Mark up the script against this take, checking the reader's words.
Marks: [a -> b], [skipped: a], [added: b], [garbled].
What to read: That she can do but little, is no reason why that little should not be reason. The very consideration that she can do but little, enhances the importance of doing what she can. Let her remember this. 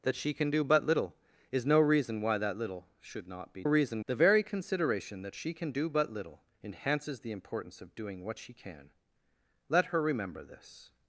That she can do but little, is no reason why that little should not be reason. The very consideration that she can do but little, enhances the importance of doing what she can. Let her remember this.